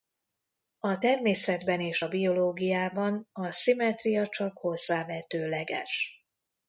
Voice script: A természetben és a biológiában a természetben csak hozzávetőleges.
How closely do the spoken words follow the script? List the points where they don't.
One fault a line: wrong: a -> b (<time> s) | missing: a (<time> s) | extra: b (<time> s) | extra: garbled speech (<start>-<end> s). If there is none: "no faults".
wrong: természetben -> szimmetria (3.5 s)